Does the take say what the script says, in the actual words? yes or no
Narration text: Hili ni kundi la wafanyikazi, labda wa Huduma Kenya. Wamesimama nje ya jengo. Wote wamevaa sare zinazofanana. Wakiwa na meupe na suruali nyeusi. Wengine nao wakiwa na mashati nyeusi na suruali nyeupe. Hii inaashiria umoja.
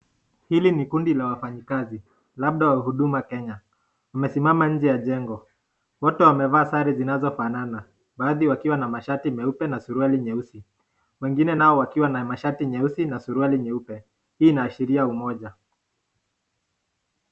no